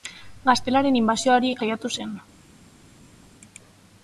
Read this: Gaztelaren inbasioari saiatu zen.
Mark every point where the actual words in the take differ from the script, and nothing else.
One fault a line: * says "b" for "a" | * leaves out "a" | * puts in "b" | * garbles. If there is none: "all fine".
all fine